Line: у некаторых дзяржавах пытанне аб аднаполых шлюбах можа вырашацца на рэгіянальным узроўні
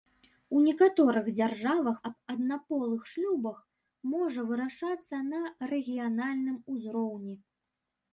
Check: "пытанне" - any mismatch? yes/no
yes